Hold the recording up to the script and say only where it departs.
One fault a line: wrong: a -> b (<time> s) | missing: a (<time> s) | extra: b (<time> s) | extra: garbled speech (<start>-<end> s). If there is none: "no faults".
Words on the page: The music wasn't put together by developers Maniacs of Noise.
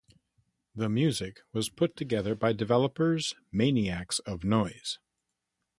wrong: wasn't -> was (1.5 s)